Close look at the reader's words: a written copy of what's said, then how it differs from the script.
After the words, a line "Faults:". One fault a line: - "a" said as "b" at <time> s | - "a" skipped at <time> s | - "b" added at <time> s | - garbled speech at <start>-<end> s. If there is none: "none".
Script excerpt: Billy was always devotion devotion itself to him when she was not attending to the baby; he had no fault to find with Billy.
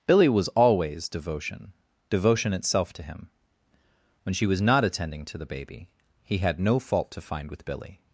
Billy was always devotion devotion itself to him when she was not attending to the baby; he had no fault to find with Billy.
Faults:
none